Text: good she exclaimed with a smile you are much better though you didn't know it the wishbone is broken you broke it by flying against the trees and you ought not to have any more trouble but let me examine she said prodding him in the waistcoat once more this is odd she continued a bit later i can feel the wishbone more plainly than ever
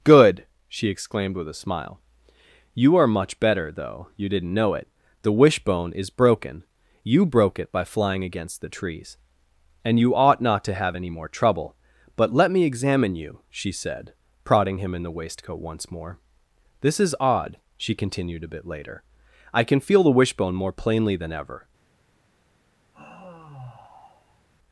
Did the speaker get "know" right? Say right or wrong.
right